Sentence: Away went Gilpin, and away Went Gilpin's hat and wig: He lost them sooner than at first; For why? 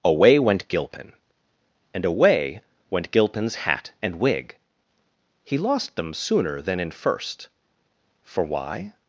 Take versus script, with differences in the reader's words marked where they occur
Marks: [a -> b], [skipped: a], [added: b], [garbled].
Away went Gilpin, and away Went Gilpin's hat and wig: He lost them sooner than [at -> in] first; For why?